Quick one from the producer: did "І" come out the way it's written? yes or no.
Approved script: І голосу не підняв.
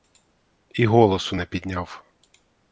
yes